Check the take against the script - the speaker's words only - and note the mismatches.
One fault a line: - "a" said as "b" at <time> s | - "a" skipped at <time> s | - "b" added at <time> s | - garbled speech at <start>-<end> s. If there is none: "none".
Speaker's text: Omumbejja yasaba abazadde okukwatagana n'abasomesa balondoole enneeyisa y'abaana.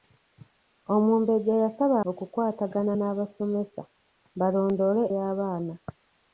- "abazadde" skipped at 1.9 s
- "enneeyisa" skipped at 5.0 s